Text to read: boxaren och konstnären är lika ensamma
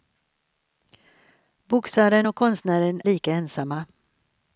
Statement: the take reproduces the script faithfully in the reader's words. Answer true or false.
false